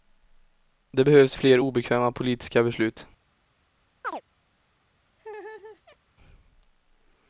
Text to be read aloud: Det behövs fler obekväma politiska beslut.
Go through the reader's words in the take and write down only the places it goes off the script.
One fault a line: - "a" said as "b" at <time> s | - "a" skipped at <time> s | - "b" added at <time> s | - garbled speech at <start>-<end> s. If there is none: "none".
none